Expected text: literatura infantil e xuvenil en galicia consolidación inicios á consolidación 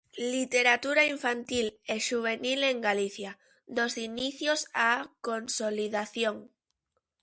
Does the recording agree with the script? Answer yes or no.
no